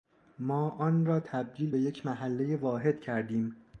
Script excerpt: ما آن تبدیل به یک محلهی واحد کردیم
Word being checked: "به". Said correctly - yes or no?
yes